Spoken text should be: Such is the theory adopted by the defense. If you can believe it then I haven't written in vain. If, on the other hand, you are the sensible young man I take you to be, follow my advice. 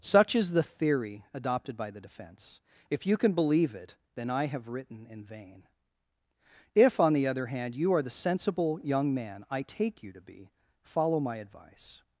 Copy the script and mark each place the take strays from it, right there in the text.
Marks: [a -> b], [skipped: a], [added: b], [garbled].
Such is the theory adopted by the defense. If you can believe it then I [haven't -> have] written in vain. If, on the other hand, you are the sensible young man I take you to be, follow my advice.